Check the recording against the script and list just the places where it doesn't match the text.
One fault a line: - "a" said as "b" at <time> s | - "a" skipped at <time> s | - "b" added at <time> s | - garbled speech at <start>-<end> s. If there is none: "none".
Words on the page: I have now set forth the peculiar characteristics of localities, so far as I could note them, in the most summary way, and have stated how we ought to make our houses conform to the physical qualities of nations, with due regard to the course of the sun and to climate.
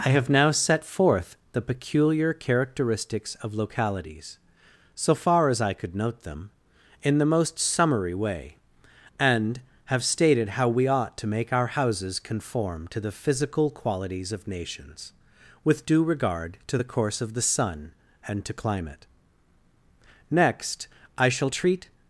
- "Next I shall treat" added at 20.3 s